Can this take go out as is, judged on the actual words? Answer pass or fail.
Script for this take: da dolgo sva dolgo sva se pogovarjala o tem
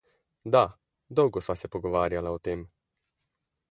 fail